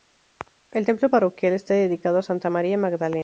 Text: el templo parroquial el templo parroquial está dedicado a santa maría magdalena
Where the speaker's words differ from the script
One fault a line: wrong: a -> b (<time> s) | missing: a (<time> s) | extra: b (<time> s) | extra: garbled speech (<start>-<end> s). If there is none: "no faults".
missing: el templo parroquial (1.5 s)